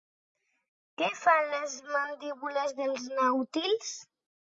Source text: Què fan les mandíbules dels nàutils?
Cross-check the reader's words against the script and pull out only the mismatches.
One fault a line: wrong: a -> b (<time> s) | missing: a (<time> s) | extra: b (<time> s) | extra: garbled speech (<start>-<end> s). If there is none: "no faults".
no faults